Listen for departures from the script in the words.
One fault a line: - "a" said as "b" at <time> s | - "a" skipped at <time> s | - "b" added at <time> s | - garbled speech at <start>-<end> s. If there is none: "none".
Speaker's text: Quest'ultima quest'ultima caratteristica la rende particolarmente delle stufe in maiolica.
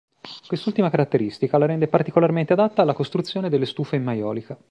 - "quest'ultima" skipped at 0.9 s
- "adatta alla costruzione" added at 2.5 s